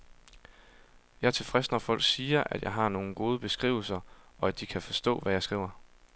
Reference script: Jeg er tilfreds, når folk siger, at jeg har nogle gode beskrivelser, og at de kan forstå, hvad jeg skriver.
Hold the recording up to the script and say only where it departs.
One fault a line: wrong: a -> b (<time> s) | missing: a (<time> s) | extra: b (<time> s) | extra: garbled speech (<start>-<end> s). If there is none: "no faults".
no faults